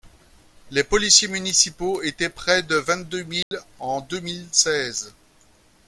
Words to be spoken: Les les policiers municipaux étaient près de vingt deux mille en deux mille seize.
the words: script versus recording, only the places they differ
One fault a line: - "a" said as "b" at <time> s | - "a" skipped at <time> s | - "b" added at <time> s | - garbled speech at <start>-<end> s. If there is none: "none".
- "les" skipped at 0.8 s